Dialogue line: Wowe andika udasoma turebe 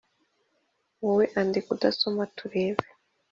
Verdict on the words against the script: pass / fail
pass